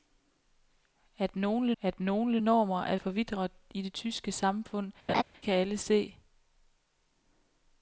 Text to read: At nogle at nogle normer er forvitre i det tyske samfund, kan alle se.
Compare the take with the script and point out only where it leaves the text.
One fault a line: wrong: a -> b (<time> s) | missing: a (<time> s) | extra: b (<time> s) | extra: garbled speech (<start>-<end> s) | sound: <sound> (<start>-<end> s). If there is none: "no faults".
sound: laugh (5.1-5.2 s)